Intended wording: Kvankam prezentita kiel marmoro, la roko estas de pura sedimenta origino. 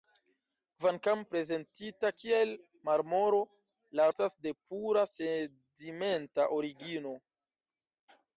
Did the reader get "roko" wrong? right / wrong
wrong